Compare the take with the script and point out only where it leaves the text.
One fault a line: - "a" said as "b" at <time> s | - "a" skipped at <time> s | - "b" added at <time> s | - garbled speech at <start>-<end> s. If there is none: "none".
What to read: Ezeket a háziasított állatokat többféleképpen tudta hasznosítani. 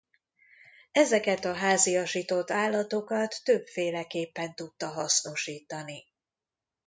none